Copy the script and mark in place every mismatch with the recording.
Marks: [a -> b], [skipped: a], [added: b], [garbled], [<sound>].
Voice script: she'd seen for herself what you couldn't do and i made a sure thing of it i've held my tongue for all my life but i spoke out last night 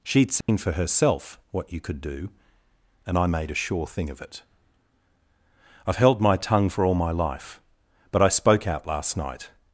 she'd seen [dropout] for herself what you [couldn't -> could] do and i made a sure thing of it i've held my tongue for all my life but i spoke out last night